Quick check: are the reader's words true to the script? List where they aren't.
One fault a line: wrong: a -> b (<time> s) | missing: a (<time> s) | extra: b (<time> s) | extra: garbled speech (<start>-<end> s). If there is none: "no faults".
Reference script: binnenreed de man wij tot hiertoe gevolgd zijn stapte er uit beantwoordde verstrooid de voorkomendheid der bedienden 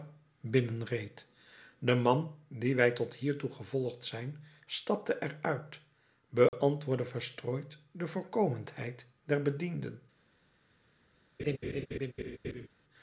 extra: dien (2.5 s)